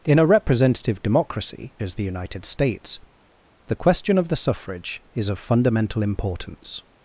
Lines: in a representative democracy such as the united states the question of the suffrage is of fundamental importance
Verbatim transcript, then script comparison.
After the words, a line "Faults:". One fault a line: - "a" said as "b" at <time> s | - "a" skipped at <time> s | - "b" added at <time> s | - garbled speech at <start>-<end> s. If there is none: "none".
in a representative democracy as the united states the question of the suffrage is of fundamental importance
Faults:
- "such" skipped at 1.8 s